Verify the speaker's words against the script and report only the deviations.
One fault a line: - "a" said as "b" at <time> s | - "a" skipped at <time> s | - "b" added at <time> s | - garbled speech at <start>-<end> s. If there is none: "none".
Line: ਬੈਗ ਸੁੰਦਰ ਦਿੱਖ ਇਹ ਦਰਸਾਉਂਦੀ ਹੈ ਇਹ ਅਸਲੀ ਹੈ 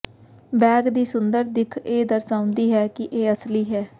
- "ਦੀ" added at 0.9 s
- "ਕਿ" added at 2.9 s